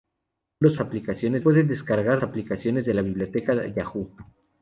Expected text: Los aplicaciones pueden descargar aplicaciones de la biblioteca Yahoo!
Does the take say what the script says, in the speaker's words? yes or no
yes